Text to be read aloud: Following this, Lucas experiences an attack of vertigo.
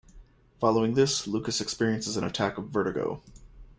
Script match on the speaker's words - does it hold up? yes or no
yes